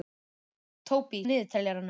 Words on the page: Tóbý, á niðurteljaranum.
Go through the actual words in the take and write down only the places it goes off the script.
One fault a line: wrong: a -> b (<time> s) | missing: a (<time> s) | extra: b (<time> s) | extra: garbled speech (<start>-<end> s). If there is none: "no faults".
no faults